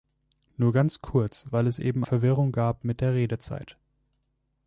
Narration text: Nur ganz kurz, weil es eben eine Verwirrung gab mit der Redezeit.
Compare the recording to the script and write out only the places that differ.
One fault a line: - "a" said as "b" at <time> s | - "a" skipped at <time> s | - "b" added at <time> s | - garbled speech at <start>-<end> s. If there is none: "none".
- "eine" skipped at 2.0 s